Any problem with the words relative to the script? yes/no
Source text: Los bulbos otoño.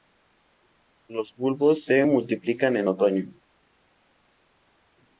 yes